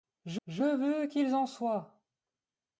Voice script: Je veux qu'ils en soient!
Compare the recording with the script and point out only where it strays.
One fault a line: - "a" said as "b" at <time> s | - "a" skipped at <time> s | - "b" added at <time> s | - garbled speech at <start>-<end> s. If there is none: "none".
- "je" added at 0.5 s